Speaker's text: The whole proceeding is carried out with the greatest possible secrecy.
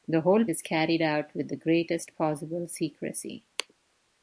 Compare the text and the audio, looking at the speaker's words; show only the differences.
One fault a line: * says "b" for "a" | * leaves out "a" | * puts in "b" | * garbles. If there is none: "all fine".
* leaves out "proceeding"